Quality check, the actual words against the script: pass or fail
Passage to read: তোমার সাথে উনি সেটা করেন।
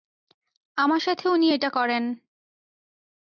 fail